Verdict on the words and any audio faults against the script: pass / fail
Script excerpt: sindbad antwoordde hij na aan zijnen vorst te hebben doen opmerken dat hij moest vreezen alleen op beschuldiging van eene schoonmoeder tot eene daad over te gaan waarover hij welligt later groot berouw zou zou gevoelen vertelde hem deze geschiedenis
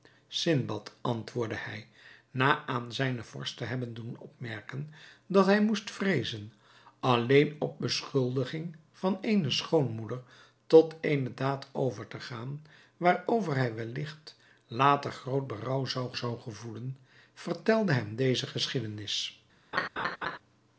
fail